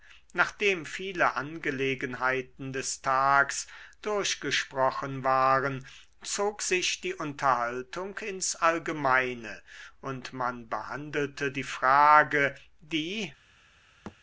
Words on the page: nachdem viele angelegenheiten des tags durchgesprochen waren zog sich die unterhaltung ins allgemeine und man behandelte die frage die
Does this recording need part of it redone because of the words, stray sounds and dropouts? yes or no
yes